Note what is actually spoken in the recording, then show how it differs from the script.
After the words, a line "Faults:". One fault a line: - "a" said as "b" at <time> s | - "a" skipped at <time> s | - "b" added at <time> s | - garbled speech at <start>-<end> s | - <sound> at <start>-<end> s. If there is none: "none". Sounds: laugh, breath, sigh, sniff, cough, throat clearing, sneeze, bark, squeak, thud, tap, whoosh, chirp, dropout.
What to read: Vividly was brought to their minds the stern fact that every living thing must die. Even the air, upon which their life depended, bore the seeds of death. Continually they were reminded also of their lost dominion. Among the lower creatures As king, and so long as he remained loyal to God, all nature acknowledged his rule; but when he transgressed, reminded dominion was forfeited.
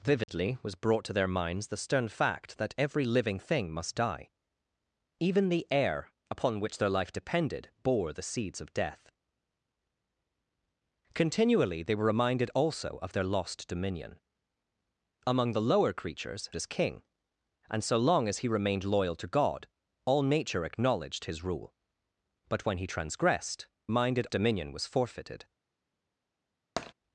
Vividly was brought to their minds the stern fact that every living thing must die. Even the air, upon which their life depended, bore the seeds of death. Continually they were reminded also of their lost dominion. Among the lower creatures As king, and so long as he remained loyal to God, all nature acknowledged his rule; but when he transgressed, reminded dominion was forfeited.
Faults:
- dropout at 0.2-0.3 s
- tap at 26.8-26.9 s